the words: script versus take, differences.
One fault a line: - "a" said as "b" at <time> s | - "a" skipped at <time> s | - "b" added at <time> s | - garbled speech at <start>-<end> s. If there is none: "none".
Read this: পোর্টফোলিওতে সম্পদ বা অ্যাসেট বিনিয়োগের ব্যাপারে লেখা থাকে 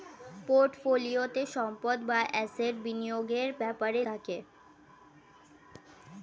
- "লেখা" skipped at 4.0 s